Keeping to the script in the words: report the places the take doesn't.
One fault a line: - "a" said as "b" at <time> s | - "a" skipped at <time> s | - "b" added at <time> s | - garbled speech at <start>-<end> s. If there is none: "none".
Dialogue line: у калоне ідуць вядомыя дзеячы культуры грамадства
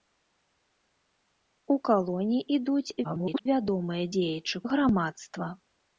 - garbled speech at 3.0-3.5 s
- "культуры" skipped at 4.6 s